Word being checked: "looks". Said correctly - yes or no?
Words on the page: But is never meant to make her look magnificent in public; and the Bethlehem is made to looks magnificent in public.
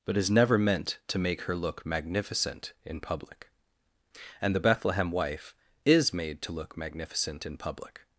no